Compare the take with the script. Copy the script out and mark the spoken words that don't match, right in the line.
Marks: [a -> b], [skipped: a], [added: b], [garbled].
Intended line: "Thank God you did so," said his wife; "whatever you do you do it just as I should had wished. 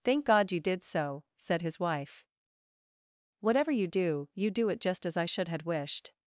"Thank God you did so," said his wife; "whatever you do you do it just as I should had wished.